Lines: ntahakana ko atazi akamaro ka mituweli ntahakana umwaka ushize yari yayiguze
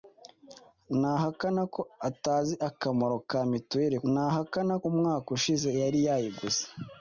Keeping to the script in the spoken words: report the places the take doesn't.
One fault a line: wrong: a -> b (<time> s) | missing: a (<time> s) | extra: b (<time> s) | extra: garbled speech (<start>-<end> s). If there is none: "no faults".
no faults